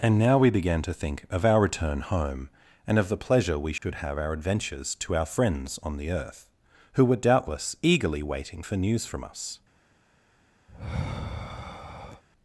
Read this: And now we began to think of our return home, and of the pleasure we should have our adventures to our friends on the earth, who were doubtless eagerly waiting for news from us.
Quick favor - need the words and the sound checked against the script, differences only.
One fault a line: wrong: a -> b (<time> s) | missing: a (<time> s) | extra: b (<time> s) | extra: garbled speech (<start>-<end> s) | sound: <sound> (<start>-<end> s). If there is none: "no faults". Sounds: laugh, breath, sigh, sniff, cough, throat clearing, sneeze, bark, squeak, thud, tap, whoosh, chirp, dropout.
sound: dropout (3.8-3.8 s)
sound: sigh (10.7-12.2 s)